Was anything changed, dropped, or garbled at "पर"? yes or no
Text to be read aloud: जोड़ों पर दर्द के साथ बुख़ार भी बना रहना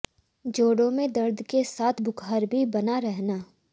yes